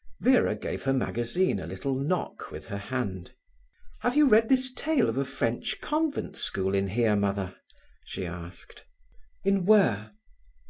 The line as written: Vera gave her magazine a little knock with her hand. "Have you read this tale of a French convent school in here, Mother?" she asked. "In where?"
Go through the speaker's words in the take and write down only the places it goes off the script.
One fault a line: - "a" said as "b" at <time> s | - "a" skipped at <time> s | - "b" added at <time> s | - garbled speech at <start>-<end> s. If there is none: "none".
none